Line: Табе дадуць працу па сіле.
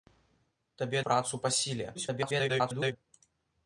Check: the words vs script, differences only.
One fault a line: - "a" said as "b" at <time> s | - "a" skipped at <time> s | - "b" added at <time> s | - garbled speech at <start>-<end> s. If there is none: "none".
- "дадуць" skipped at 1.0 s
- garbled speech at 1.9-3.0 s